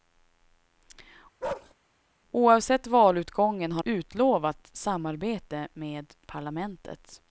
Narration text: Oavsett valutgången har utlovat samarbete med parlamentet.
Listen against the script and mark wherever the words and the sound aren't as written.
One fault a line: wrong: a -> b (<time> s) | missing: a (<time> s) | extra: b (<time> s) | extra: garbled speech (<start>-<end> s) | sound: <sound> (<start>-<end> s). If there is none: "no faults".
sound: bark (1.4-1.7 s)